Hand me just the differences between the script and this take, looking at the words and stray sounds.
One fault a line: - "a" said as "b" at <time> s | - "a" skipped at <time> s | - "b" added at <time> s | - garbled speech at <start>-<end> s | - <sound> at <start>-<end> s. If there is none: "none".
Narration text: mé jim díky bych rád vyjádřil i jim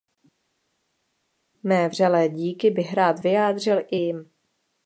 - "jim" said as "vřelé" at 1.9 s